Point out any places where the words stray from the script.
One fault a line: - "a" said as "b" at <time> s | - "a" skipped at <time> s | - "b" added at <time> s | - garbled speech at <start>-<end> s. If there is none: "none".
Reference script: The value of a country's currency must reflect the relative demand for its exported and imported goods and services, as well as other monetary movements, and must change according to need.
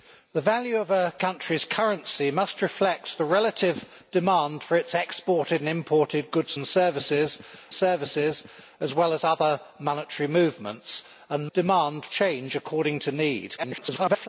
- "services" added at 7.7 s
- "must" said as "demand" at 11.5 s
- garbled speech at 13.6-14.3 s